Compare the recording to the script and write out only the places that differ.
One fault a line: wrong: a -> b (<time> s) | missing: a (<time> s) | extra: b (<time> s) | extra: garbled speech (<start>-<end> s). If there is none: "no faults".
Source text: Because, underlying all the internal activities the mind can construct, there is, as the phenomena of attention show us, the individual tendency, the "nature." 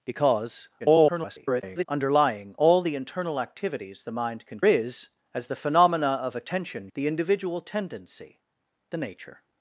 extra: garbled speech (0.8-1.9 s)
missing: construct there (4.6 s)
missing: show us (6.9 s)